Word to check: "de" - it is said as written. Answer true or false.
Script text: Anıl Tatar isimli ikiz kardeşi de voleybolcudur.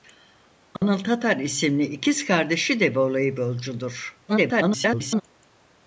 true